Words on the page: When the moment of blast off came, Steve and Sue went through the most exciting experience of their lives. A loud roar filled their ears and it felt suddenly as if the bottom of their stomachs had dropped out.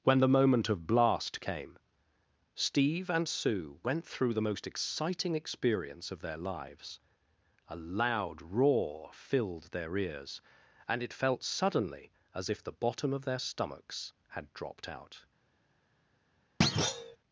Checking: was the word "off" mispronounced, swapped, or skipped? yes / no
yes